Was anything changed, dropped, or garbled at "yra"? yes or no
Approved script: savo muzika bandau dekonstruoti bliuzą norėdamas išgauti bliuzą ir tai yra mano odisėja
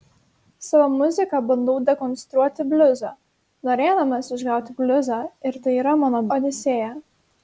no